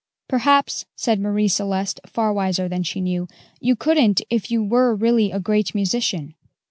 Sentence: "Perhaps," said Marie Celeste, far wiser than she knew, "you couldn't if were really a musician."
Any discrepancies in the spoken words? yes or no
yes